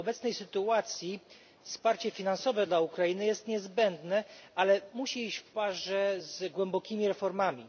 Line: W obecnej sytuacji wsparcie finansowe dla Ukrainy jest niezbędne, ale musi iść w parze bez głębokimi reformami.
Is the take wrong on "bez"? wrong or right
wrong